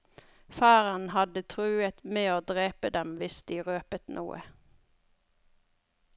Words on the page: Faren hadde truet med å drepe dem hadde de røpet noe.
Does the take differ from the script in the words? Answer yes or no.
yes